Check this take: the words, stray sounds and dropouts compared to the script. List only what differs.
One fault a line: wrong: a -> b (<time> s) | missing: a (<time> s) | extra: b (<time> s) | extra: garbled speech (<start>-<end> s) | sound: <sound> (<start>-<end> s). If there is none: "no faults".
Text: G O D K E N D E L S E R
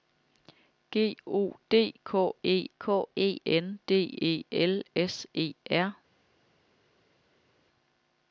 extra: K E (2.8 s)